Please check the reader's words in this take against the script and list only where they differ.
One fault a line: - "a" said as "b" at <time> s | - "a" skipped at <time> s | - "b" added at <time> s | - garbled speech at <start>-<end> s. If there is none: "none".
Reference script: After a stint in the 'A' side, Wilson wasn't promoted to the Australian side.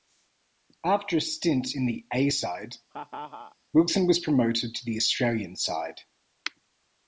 - "wasn't" said as "was" at 4.1 s